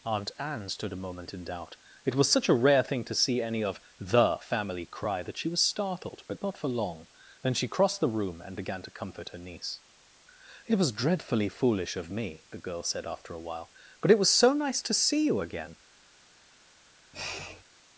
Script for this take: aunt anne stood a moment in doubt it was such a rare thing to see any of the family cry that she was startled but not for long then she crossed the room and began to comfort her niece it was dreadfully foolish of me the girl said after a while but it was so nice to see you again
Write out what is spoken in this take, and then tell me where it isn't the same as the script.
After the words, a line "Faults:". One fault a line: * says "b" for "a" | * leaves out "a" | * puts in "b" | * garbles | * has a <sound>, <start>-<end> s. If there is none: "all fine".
aunt anne stood a moment in doubt it was such a rare thing to see any of the family cry that she was startled but not for long then she crossed the room and began to comfort her niece it was dreadfully foolish of me the girl said after a while but it was so nice to see you again
Faults:
* has a sniff, 17.1-17.6 s